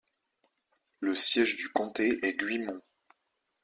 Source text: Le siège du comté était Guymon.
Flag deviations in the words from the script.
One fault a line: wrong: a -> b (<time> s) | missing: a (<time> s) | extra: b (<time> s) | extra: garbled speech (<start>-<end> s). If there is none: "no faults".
wrong: était -> est (2.2 s)